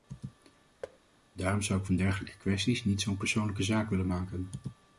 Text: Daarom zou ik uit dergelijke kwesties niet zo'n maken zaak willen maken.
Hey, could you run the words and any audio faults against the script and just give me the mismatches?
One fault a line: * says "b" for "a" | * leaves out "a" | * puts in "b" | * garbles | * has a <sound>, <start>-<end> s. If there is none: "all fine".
* has a thud, 0.8-1.0 s
* says "van" for "uit"
* says "persoonlijke" for "maken"